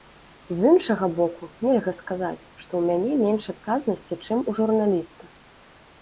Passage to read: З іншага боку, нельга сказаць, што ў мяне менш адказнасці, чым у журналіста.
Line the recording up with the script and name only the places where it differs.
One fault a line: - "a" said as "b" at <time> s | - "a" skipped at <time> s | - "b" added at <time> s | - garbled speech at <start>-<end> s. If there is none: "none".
none